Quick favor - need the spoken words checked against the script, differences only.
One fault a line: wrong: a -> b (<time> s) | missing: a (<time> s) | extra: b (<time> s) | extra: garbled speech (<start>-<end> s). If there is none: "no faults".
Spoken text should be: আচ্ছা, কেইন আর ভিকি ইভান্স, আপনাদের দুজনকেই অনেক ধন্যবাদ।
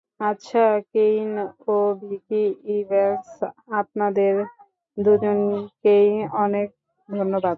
wrong: আর -> ও (1.7 s)